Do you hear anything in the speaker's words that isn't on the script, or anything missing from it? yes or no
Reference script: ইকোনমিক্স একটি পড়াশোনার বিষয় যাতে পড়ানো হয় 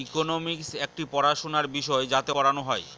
no